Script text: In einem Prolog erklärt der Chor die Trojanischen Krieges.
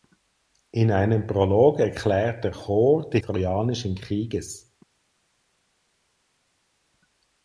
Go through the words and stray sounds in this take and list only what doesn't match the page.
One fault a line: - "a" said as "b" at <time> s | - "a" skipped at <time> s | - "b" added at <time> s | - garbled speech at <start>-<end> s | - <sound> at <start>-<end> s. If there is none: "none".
none